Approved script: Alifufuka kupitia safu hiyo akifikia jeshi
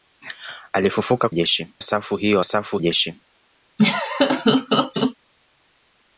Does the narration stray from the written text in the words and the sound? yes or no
yes